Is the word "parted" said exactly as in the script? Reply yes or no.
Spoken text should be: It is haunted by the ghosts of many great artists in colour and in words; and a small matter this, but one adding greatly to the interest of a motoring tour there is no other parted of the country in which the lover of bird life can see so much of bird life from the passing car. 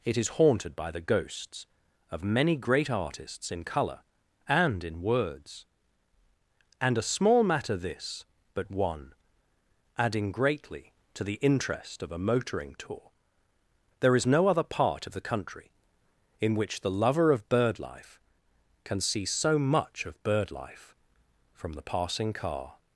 no